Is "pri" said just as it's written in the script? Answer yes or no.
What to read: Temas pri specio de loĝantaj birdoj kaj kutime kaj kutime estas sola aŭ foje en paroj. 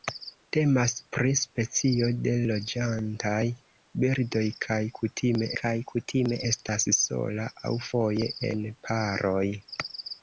yes